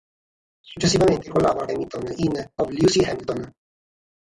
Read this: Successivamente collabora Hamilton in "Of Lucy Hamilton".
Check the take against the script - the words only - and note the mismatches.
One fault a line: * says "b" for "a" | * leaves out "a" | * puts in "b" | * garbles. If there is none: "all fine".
all fine